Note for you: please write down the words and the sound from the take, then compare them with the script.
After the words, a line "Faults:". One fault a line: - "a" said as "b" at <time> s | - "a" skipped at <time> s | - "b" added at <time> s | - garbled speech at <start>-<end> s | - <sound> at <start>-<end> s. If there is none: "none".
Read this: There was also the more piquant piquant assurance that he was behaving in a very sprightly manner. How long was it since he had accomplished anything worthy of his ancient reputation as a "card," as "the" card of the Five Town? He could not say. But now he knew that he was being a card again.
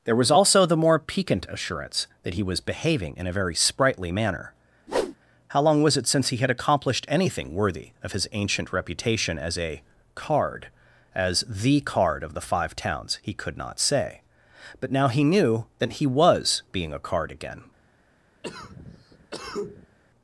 There was also the more piquant assurance that he was behaving in a very sprightly manner. How long was it since he had accomplished anything worthy of his ancient reputation as a "card," as "the" card of the Five Towns? He could not say. But now he knew that he was being a card again.
Faults:
- "piquant" skipped at 1.4 s
- whoosh at 4.9-5.2 s
- "Town" said as "Towns" at 12.8 s
- cough at 18.4-20.0 s